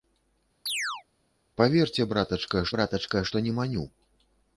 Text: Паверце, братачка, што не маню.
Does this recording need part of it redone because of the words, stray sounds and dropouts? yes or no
yes